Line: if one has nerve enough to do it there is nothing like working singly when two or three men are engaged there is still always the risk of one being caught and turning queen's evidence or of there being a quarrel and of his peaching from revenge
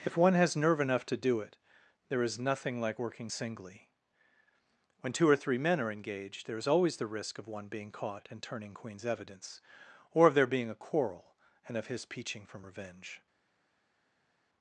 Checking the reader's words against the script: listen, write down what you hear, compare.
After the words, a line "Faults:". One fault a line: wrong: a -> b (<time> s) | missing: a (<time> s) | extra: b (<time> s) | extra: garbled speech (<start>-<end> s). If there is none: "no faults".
if one has nerve enough to do it there is nothing like working singly when two or three men are engaged there is always the risk of one being caught and turning queen's evidence or of there being a quarrel and of his peaching from revenge
Faults:
missing: still (6.7 s)